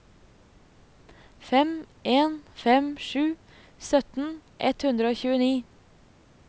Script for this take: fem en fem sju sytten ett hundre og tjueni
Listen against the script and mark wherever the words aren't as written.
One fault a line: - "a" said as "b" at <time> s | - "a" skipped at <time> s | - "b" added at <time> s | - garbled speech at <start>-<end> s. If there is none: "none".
none